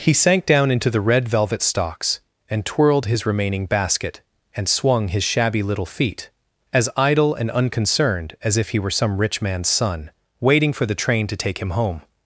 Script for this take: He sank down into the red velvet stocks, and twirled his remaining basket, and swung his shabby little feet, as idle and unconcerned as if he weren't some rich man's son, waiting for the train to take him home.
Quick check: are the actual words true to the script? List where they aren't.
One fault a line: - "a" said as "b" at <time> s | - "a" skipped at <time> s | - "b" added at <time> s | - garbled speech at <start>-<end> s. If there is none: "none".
- "weren't" said as "were" at 8.8 s